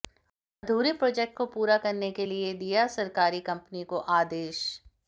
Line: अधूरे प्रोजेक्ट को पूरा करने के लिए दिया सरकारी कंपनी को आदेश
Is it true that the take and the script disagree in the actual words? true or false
false